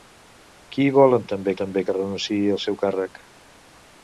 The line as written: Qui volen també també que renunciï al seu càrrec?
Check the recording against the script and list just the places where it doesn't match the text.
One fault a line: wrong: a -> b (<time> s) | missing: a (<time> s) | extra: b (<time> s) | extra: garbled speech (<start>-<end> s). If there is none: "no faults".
no faults